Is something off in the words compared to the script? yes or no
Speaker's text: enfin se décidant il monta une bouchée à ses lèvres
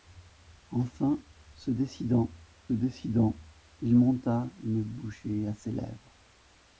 yes